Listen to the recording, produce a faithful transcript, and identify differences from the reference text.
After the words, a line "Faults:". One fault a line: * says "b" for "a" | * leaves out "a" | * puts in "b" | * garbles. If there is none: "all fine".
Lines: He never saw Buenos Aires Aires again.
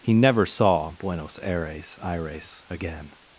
He never saw Buenos Aires Aires again.
Faults:
all fine